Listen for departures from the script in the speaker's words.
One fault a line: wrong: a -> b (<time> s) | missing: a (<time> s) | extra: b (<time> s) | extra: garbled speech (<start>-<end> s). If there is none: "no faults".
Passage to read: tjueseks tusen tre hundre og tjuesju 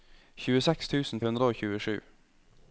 missing: tre (1.2 s)